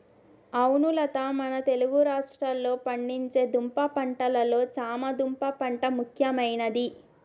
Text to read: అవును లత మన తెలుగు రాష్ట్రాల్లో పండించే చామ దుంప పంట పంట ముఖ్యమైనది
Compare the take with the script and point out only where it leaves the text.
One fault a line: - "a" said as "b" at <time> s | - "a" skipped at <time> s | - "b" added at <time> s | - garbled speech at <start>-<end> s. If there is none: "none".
- "దుంప పంటలలో" added at 3.5 s
- "పంట" skipped at 5.9 s